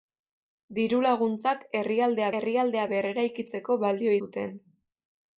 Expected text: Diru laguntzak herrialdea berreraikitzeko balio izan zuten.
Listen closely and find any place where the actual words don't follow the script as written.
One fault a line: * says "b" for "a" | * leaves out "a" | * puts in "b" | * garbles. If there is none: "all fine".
* puts in "herrialdea"
* leaves out "izan"